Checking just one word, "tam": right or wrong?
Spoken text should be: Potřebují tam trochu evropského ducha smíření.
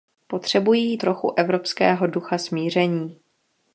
wrong